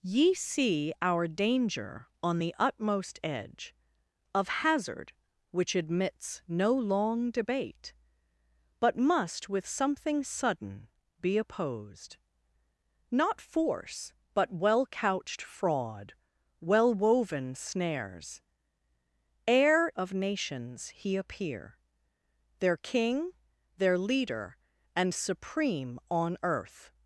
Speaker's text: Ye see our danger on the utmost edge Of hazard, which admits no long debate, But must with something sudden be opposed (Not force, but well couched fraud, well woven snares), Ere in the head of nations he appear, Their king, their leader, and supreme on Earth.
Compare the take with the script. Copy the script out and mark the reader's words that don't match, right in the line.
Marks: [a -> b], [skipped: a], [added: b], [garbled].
Ye see our danger on the utmost edge Of hazard, which admits no long debate, But must with something sudden be opposed (Not force, but well couched fraud, well woven snares), Ere [skipped: in the head] of nations he appear, Their king, their leader, and supreme on Earth.